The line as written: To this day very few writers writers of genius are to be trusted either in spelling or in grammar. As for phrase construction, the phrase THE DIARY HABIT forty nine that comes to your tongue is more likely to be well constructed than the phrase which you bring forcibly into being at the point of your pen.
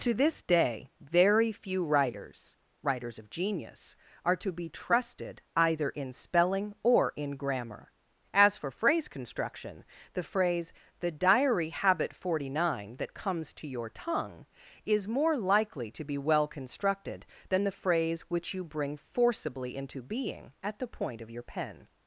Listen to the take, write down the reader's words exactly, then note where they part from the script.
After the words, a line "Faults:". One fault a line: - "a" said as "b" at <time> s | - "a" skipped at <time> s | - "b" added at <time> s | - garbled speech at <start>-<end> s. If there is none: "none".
To this day very few writers writers of genius are to be trusted either in spelling or in grammar. As for phrase construction, the phrase THE DIARY HABIT forty nine that comes to your tongue is more likely to be well constructed than the phrase which you bring forcibly into being at the point of your pen.
Faults:
none